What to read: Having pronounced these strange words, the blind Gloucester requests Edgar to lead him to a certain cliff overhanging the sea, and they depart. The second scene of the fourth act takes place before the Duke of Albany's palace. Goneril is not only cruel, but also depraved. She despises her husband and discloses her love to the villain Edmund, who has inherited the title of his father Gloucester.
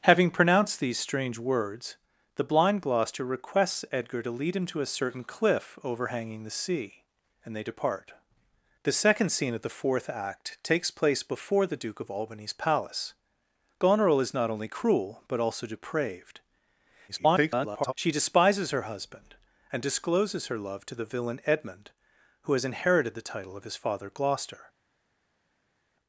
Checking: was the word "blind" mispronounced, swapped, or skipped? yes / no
no